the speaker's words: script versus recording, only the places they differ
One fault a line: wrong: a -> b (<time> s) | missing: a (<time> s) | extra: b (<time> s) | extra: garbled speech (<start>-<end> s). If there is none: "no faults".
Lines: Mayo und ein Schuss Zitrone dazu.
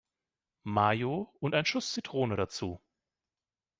no faults